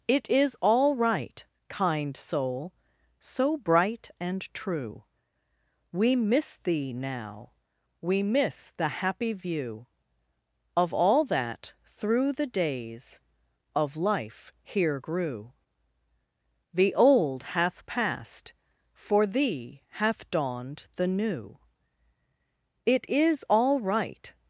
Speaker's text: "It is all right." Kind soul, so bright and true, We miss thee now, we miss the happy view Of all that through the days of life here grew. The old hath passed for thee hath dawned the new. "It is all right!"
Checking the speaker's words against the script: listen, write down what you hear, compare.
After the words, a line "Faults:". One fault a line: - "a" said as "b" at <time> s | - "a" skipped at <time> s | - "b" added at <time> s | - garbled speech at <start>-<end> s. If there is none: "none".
"It is all right." Kind soul, so bright and true, We miss thee now, we miss the happy view Of all that through the days of life here grew. The old hath passed for thee hath dawned the new. "It is all right!"
Faults:
none